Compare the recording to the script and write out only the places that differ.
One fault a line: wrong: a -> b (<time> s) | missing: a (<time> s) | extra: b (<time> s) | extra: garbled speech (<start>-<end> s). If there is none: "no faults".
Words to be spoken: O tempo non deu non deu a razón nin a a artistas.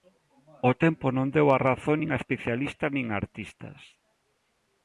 missing: non deu (1.5 s)
extra: especialistas nin (2.2 s)